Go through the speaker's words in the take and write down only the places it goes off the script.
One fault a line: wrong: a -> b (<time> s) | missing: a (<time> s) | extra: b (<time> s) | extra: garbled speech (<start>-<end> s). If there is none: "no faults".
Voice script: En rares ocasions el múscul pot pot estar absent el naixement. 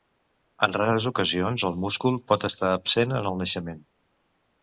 missing: pot (2.5 s)
extra: en (3.2 s)